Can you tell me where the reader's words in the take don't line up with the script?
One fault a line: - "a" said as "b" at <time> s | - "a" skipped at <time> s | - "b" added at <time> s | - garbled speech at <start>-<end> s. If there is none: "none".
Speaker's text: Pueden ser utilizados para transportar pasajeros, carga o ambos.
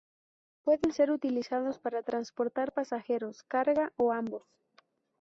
none